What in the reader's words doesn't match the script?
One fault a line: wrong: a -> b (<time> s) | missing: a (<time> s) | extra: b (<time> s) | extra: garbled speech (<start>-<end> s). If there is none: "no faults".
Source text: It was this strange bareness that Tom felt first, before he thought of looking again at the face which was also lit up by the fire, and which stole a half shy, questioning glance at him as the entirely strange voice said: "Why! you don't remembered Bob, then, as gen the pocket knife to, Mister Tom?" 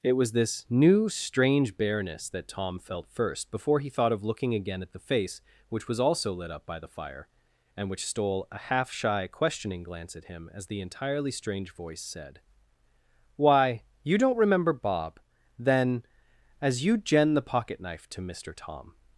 extra: new (0.7 s)
wrong: remembered -> remember (14.4 s)
extra: you (16.8 s)